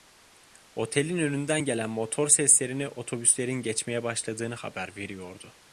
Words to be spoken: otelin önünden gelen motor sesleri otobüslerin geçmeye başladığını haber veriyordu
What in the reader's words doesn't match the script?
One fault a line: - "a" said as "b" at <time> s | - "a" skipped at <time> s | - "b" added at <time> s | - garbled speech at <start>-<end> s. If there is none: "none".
none